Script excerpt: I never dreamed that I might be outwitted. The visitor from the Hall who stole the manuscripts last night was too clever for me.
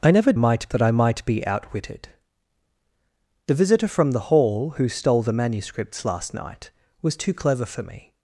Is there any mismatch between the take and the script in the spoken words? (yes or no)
yes